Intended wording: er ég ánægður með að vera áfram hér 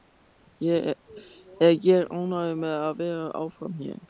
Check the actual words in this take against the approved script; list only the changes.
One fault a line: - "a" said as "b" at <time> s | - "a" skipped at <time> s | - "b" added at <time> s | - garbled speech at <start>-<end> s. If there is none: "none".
none